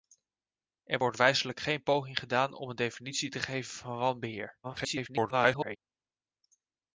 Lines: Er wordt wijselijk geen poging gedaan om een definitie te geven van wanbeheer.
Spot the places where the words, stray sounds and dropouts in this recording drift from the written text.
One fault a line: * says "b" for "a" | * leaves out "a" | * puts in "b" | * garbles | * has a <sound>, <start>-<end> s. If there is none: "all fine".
* garbles